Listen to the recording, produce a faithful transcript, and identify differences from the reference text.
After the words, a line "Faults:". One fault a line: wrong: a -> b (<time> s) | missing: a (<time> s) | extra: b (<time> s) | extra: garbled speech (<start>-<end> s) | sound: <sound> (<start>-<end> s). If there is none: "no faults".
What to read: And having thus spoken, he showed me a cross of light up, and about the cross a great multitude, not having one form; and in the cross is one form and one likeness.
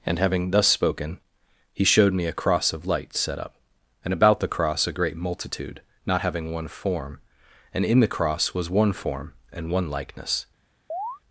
And having thus spoken, he showed me a cross of light set up, and about the cross a great multitude, not having one form; and in the cross was one form and one likeness.
Faults:
extra: set (3.1 s)
wrong: is -> was (8.5 s)
sound: chirp (10.9-11.2 s)